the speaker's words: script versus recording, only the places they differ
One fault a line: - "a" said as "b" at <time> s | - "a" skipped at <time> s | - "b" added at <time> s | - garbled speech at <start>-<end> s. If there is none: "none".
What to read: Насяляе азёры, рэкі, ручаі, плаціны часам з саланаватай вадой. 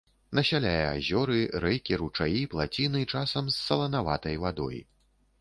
none